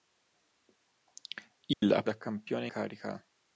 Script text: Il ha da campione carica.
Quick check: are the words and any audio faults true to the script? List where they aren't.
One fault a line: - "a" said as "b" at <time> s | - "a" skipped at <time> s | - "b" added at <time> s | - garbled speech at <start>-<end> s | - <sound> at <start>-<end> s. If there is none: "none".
- dropout at 1.7-1.8 s